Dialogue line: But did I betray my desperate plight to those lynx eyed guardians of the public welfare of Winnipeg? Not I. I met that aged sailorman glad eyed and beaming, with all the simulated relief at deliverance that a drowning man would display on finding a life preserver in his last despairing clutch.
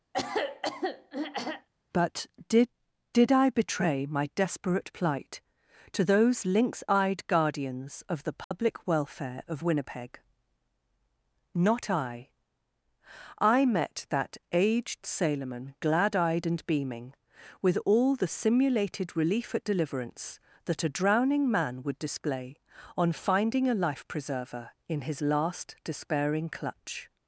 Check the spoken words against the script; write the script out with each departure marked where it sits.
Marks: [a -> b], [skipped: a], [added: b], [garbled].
But did [added: did] I betray my desperate plight to those lynx eyed guardians of the public welfare of Winnipeg? Not I. I met that aged sailorman glad eyed and beaming, with all the simulated relief at deliverance that a drowning man would display on finding a life preserver in his last despairing clutch.